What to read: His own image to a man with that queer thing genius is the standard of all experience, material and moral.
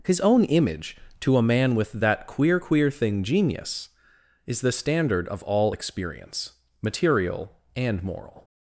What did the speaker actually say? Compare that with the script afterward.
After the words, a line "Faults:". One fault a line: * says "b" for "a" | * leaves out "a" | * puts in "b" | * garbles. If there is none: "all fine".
His own image to a man with that queer queer thing genius is the standard of all experience, material and moral.
Faults:
* puts in "queer"